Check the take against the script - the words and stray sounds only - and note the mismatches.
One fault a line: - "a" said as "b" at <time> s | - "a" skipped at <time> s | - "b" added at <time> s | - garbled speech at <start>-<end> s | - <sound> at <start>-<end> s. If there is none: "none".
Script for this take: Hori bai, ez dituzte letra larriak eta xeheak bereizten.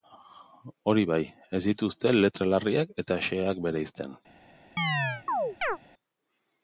- chirp at 4.8-5.8 s